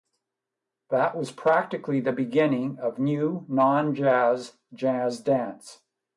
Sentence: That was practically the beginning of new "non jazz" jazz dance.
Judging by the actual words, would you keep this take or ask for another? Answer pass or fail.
pass